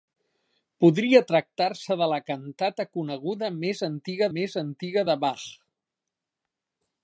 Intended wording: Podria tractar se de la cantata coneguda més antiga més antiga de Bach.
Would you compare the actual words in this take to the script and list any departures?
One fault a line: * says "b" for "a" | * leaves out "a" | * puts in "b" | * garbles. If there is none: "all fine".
all fine